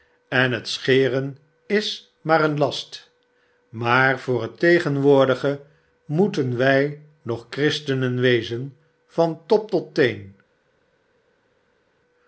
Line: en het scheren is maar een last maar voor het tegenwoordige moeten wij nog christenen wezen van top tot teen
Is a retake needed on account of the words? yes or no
no